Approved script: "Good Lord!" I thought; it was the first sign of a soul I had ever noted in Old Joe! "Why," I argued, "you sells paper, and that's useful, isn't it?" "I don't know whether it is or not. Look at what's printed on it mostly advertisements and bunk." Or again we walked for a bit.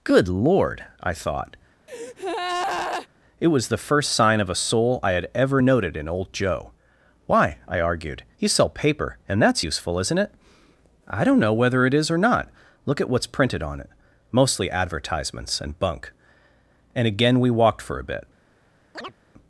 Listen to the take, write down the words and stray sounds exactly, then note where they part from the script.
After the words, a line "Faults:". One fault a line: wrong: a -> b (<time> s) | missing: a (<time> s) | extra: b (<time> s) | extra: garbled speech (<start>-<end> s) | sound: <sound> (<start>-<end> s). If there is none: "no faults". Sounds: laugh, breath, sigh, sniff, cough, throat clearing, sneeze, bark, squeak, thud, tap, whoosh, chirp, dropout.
"Good Lord!" I thought; it was the first sign of a soul I had ever noted in Old Joe! "Why," I argued, "you sell paper, and that's useful, isn't it?" "I don't know whether it is or not. Look at what's printed on it mostly advertisements and bunk." And again we walked for a bit.
Faults:
sound: breath (1.9-3.1 s)
wrong: sells -> sell (8.5 s)
wrong: Or -> And (16.9 s)
sound: chirp (18.9-19.1 s)